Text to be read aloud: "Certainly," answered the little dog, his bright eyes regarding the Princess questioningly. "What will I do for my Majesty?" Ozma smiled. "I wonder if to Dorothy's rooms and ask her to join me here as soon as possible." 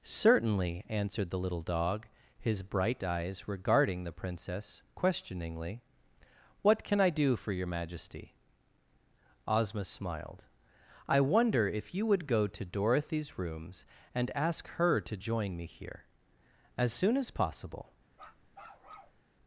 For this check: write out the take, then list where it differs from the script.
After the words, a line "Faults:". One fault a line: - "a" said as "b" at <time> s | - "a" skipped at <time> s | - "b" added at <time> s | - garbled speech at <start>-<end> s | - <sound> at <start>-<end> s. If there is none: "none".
"Certainly," answered the little dog, his bright eyes regarding the Princess questioningly. "What can I do for your Majesty?" Ozma smiled. "I wonder if you would go to Dorothy's rooms and ask her to join me here as soon as possible."
Faults:
- "will" said as "can" at 6.8 s
- "my" said as "your" at 7.5 s
- "you would go" added at 11.9 s
- bark at 18.1-19.2 s